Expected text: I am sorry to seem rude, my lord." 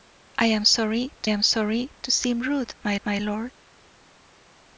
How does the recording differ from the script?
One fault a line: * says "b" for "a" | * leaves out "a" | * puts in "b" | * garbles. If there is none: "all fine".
* puts in "am sorry to"
* puts in "my"